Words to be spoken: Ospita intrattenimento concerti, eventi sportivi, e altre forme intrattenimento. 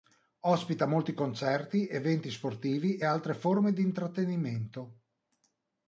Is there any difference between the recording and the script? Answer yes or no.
yes